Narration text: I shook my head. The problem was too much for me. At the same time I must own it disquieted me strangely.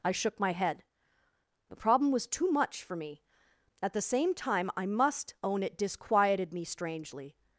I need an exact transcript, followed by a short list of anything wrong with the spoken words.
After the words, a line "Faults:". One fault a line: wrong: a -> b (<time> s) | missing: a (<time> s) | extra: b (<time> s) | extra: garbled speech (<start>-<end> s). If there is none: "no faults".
I shook my head. The problem was too much for me. At the same time I must own it disquieted me strangely.
Faults:
no faults